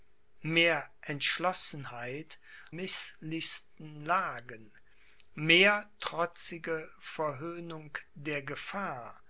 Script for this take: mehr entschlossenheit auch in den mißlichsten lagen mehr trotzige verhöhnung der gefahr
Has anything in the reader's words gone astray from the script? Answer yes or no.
yes